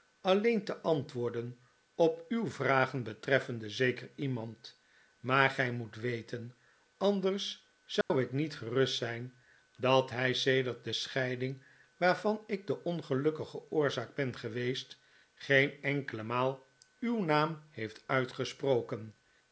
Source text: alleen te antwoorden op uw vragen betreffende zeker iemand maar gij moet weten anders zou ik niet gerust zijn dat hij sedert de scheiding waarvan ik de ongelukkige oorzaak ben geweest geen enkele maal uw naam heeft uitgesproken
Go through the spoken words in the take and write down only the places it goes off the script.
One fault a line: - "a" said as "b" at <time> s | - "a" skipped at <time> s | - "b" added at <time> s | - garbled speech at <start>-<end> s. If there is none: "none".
none